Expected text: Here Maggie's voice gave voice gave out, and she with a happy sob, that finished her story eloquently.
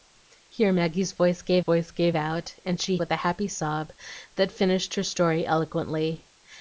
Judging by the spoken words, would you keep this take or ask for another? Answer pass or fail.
pass